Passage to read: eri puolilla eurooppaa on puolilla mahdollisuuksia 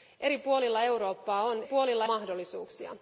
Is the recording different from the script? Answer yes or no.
no